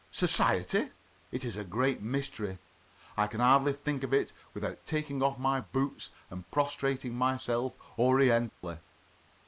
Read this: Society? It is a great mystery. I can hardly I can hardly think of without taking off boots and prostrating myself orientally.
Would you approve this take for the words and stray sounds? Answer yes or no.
no